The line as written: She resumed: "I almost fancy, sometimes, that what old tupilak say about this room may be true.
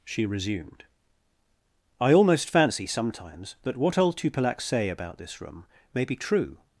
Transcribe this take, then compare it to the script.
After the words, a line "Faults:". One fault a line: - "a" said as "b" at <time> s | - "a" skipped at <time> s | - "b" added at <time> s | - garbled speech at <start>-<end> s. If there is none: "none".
She resumed: "I almost fancy, sometimes, that what old tupilak say about this room may be true.
Faults:
none